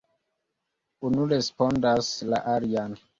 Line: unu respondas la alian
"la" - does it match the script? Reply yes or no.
yes